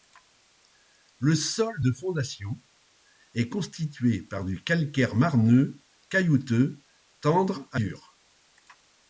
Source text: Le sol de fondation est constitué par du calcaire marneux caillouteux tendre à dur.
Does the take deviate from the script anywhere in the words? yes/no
no